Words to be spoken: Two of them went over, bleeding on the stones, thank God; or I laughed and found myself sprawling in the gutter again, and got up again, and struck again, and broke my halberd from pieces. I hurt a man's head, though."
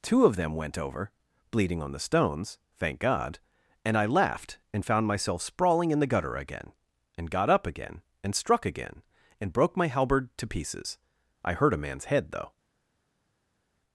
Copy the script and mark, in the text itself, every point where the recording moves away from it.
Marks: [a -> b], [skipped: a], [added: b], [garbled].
Two of them went over, bleeding on the stones, thank God; [or -> and] I laughed and found myself sprawling in the gutter again, and got up again, and struck again, and broke my halberd [from -> to] pieces. I hurt a man's head, though."